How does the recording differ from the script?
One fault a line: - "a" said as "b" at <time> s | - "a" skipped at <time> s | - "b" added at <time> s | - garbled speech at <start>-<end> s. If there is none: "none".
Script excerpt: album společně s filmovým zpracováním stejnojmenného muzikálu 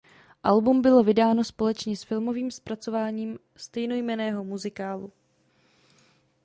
- "bylo vydáno" added at 0.8 s